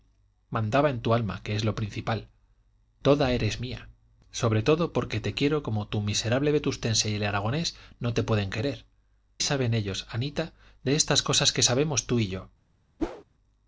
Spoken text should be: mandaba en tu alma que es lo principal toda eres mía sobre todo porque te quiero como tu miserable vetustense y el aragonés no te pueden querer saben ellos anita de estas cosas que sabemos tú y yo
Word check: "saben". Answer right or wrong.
right